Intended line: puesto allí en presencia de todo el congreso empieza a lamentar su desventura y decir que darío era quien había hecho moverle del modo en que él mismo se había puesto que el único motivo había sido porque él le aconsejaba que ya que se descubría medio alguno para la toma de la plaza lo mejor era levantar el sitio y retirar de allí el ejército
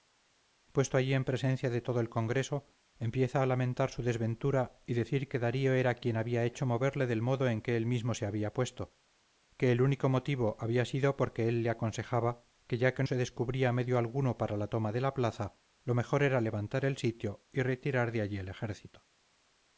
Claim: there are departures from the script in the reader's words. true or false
false